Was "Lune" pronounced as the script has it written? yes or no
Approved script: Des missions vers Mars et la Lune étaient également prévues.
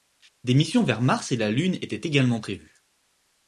yes